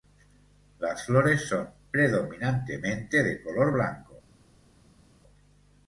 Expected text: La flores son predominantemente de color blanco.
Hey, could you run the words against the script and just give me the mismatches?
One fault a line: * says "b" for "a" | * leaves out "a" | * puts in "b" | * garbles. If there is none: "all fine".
* says "Las" for "La"